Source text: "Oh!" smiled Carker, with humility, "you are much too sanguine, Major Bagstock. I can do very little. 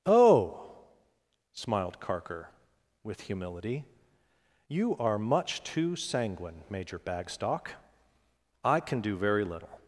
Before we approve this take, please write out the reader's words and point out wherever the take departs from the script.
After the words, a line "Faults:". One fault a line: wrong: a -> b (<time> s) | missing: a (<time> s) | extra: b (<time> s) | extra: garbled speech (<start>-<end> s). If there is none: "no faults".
"Oh!" smiled Carker, with humility, "you are much too sanguine, Major Bagstock. I can do very little.
Faults:
no faults